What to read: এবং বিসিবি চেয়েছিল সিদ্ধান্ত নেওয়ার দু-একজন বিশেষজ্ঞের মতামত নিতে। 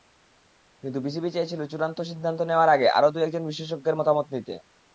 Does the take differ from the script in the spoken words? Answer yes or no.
yes